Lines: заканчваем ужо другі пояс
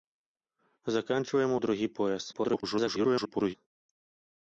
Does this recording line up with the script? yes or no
no